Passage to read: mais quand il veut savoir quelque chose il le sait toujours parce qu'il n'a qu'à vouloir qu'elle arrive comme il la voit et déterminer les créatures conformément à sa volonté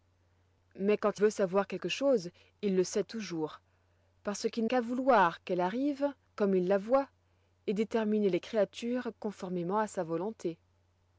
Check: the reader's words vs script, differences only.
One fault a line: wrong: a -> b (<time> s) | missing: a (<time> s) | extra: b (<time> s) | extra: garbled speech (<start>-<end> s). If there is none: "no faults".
missing: il (1.2 s)
missing: n'a (4.7 s)